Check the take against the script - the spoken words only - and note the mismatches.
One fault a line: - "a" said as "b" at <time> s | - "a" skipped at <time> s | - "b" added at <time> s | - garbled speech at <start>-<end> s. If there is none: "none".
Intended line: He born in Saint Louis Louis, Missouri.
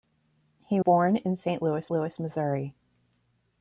none